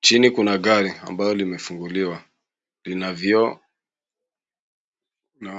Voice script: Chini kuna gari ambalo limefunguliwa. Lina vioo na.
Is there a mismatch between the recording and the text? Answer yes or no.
no